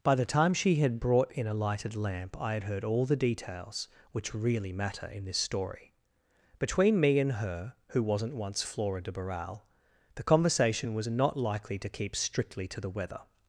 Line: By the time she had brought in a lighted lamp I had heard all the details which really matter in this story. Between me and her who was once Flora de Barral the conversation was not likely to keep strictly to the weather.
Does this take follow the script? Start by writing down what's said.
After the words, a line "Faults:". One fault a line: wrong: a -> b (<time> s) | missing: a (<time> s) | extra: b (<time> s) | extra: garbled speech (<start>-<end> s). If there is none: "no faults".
By the time she had brought in a lighted lamp I had heard all the details which really matter in this story. Between me and her who wasn't once Flora de Barral the conversation was not likely to keep strictly to the weather.
Faults:
wrong: was -> wasn't (8.0 s)